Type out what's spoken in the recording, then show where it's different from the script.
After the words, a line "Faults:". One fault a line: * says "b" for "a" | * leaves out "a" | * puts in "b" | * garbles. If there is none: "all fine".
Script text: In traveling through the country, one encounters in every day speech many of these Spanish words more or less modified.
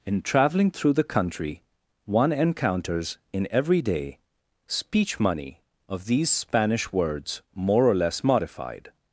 In traveling through the country, one encounters in every day speech money of these Spanish words more or less modified.
Faults:
* says "money" for "many"